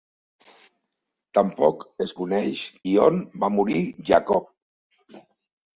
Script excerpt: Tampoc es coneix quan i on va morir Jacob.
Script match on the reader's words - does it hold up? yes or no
no